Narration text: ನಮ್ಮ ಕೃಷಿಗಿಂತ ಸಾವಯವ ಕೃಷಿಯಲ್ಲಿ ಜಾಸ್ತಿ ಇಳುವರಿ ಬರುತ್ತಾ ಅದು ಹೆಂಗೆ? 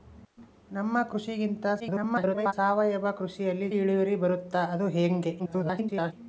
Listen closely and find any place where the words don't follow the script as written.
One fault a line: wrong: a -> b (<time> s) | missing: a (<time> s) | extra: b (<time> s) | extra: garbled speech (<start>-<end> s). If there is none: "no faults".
extra: garbled speech (1.8-2.5 s)
missing: ಜಾಸ್ತಿ (3.7 s)
extra: garbled speech (5.4-6.1 s)